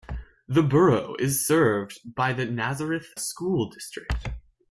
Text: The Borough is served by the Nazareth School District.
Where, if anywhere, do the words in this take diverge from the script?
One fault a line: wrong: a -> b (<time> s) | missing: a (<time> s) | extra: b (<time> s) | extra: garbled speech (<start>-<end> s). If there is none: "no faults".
no faults